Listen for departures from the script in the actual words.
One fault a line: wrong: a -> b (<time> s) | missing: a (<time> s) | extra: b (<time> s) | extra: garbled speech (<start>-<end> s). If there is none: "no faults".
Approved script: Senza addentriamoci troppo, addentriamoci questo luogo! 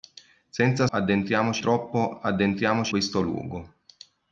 no faults